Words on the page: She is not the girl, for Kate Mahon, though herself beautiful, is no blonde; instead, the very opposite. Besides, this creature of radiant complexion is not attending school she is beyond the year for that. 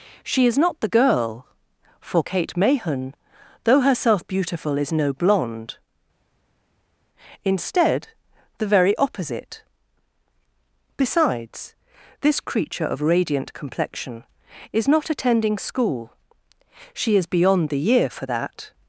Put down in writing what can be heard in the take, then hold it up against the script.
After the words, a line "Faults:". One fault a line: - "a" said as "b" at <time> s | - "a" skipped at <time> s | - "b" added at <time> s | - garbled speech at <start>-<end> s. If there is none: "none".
She is not the girl, for Kate Mahon, though herself beautiful, is no blonde; instead, the very opposite. Besides, this creature of radiant complexion is not attending school she is beyond the year for that.
Faults:
none